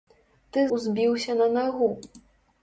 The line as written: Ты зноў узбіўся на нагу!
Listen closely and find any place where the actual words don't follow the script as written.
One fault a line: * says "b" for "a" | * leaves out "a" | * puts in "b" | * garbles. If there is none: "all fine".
* leaves out "зноў"